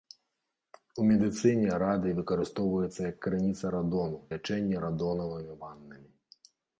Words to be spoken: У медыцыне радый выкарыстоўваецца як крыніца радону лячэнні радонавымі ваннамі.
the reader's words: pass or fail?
pass